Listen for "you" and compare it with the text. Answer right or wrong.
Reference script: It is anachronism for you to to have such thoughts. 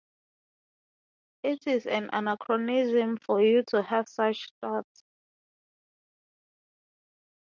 right